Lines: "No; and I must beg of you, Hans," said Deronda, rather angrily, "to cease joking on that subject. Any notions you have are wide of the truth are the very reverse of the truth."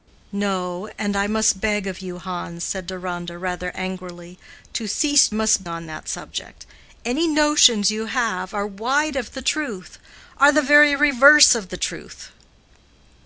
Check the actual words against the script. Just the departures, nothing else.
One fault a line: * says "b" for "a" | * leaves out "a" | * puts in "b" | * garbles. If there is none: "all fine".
* says "must" for "joking"